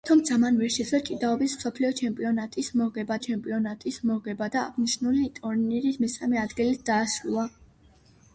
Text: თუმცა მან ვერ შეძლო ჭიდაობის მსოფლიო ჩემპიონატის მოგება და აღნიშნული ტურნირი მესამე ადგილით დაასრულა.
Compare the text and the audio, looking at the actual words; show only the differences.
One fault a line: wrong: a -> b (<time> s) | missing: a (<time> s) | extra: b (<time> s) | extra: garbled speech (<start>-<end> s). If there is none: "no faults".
extra: ჩემპიონატის მოგება (3.3 s)